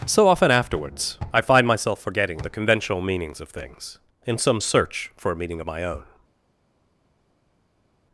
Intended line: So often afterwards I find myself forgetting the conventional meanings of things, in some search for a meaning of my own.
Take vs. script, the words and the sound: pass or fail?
pass